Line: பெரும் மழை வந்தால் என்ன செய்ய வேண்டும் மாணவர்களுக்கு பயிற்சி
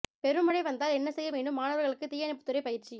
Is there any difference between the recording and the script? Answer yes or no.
yes